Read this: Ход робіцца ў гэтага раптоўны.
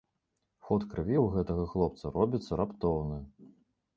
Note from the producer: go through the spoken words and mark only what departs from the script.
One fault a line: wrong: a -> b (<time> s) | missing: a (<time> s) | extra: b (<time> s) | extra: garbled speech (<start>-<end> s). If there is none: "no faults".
wrong: робіцца -> крыві (0.9 s)
extra: хлопца робіцца (1.7 s)